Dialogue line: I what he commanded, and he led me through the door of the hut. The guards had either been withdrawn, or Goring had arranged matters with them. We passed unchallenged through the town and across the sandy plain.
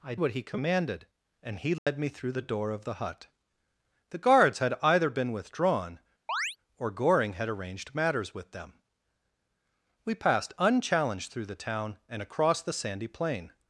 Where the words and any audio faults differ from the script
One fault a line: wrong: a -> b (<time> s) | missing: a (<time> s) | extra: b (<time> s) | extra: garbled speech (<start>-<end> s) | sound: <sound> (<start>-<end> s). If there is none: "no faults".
sound: dropout (1.8-1.9 s)
sound: chirp (6.3-6.6 s)